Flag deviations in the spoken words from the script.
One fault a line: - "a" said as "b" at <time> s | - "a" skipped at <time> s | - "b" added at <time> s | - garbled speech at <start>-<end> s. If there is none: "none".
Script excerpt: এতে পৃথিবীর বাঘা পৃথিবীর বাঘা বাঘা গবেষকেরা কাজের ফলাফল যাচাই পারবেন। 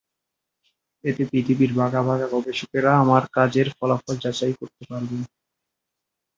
- "পৃথিবীর" skipped at 2.0 s
- "বাঘা গবেষকেরা" said as "গবেষকেরা আমার" at 2.3 s
- "করতে" added at 4.6 s